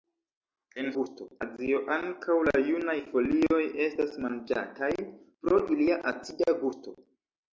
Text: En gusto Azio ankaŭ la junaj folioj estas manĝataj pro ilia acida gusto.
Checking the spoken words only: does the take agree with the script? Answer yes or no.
yes